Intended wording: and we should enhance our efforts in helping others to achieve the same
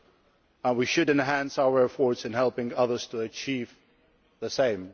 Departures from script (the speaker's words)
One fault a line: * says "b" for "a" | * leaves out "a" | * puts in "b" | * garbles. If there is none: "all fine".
all fine